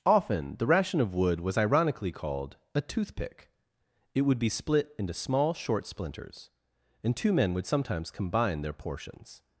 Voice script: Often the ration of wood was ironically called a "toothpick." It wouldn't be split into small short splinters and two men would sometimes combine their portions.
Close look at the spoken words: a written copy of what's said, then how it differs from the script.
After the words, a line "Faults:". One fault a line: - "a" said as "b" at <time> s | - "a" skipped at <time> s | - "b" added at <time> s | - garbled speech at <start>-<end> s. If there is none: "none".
Often the ration of wood was ironically called a "toothpick." It would be split into small short splinters and two men would sometimes combine their portions.
Faults:
- "wouldn't" said as "would" at 4.2 s